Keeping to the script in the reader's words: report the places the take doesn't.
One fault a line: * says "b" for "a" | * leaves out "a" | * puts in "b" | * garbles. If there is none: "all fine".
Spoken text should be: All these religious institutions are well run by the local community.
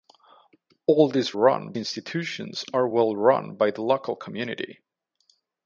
* says "run" for "religious"